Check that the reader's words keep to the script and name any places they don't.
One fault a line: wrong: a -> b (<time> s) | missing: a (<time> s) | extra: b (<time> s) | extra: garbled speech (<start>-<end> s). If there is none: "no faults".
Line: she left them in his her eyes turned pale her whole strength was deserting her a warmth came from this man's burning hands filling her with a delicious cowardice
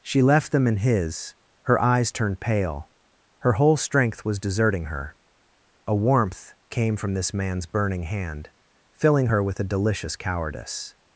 wrong: hands -> hand (8.0 s)